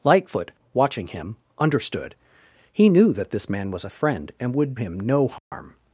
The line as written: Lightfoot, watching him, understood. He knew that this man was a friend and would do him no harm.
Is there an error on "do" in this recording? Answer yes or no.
yes